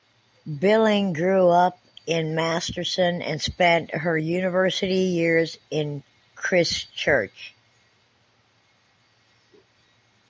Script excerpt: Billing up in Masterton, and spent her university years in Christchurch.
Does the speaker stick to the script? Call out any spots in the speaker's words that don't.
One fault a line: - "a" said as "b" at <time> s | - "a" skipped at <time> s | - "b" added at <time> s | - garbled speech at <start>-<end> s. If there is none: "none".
- "grew" added at 1.1 s